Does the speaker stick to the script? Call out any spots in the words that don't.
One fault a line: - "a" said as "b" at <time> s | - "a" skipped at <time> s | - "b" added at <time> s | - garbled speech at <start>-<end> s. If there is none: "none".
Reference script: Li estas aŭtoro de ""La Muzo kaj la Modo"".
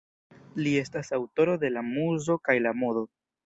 none